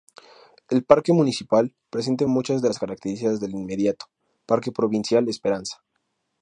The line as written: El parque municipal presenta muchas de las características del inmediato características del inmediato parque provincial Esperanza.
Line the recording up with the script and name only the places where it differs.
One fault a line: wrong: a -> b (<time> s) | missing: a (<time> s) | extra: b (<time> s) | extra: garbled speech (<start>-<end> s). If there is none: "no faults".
missing: características del inmediato (4.0 s)